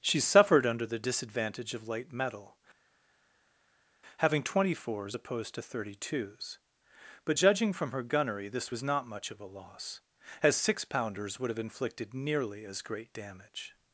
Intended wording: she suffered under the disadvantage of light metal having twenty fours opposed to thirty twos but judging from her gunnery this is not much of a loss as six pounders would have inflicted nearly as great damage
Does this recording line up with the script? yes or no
no